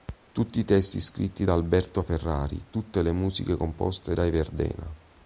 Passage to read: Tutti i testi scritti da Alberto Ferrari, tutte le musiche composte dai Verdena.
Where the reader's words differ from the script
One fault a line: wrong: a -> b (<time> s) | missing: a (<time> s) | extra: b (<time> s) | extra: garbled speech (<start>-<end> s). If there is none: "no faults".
no faults